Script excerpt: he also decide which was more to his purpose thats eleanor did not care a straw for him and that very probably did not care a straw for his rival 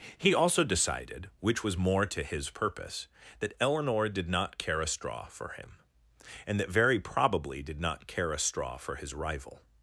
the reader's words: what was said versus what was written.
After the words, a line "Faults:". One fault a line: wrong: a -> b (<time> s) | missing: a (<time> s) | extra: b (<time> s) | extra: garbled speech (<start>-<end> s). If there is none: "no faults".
he also decided which was more to his purpose that eleanor did not care a straw for him and that very probably did not care a straw for his rival
Faults:
wrong: decide -> decided (0.6 s)
wrong: thats -> that (3.4 s)